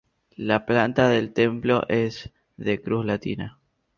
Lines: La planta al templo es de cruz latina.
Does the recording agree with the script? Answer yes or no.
no